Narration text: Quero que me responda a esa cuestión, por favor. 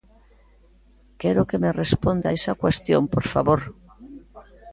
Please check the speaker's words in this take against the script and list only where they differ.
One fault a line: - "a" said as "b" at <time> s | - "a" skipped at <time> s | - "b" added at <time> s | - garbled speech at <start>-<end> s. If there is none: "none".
none